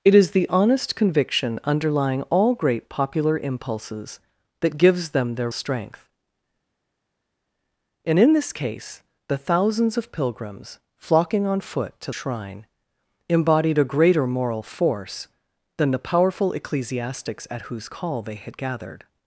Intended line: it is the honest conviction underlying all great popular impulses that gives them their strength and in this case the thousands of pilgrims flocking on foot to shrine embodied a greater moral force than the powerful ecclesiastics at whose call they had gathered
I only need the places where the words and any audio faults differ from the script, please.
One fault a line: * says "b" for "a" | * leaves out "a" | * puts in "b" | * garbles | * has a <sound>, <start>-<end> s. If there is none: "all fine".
all fine